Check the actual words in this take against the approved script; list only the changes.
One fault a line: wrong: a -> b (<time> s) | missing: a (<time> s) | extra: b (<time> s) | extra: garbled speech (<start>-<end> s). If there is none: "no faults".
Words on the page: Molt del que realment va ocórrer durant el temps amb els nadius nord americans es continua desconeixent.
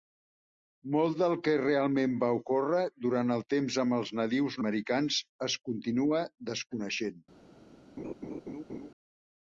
missing: nord (4.6 s)